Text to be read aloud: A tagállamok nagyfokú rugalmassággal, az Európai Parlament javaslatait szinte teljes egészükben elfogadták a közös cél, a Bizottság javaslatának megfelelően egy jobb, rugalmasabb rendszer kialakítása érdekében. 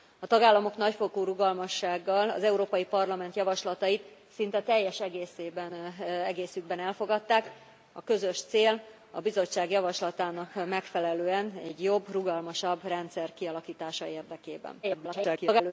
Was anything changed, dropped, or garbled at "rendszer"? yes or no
no